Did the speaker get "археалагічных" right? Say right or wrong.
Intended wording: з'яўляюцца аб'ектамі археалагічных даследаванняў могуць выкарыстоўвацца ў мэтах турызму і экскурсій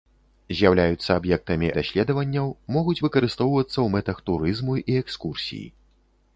wrong